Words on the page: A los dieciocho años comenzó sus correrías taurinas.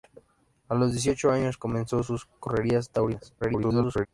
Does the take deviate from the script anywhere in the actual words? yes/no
yes